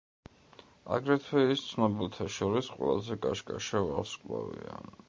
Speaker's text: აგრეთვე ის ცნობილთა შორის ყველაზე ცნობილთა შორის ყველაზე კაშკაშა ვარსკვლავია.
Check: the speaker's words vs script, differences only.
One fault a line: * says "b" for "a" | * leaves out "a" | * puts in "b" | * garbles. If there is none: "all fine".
* leaves out "ცნობილთა შორის ყველაზე"